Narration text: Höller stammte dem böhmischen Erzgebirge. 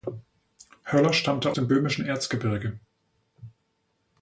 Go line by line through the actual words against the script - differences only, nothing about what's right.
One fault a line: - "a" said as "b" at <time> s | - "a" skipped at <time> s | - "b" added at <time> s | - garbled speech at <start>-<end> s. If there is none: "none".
none